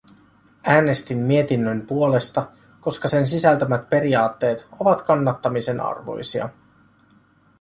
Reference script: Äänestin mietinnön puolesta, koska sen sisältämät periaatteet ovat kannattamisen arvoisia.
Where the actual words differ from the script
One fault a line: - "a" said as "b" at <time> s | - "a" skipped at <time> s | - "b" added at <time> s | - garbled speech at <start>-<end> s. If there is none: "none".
none